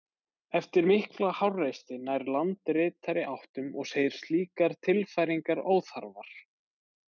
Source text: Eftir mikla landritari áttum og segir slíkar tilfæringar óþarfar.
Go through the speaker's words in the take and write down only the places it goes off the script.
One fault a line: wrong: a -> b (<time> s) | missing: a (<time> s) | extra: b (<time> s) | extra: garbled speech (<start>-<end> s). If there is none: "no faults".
extra: háreysti nær (1.4 s)